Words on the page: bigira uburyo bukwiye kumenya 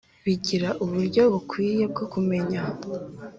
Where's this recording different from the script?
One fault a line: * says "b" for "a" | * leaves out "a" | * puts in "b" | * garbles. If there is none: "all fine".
* puts in "bwo"